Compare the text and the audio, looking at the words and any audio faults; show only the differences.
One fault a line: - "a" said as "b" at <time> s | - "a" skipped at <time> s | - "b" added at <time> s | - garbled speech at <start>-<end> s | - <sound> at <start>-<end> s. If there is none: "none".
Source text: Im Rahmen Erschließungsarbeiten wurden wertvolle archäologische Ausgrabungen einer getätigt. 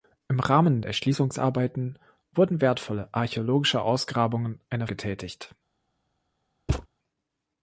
- thud at 6.7-6.9 s